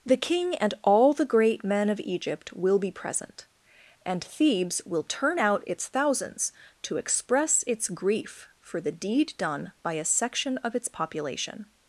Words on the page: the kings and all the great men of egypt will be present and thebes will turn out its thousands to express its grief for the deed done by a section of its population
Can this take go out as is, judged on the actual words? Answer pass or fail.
fail